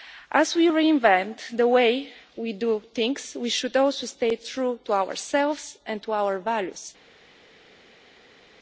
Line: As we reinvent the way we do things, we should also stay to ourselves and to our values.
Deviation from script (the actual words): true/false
true